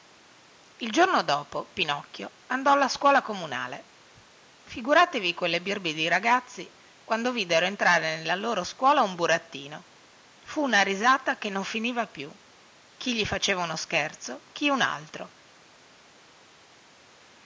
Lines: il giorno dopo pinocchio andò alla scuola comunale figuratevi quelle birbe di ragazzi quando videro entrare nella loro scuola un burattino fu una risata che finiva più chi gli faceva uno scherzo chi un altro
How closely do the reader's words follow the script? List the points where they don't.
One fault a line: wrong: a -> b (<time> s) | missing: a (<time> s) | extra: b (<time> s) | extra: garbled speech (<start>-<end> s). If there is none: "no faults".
extra: non (11.5 s)